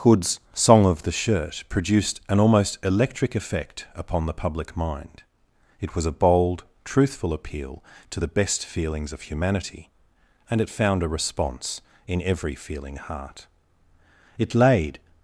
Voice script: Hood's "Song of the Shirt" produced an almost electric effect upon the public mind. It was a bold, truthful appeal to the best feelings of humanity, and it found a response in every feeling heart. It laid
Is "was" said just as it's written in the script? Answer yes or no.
yes